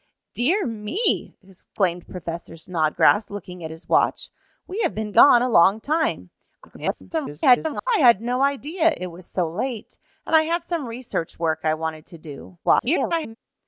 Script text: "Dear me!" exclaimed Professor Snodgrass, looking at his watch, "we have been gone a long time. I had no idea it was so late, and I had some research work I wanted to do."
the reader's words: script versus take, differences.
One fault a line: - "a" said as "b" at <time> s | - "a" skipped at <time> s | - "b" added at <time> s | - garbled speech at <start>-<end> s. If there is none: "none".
- garbled speech at 6.6-7.9 s
- garbled speech at 12.6-13.4 s